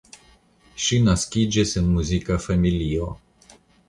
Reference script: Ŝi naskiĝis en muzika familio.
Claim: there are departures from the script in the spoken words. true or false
false